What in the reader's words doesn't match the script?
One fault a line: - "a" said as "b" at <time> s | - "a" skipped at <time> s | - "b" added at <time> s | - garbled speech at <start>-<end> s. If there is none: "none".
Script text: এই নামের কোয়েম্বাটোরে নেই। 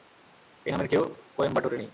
- "কেউ" added at 0.9 s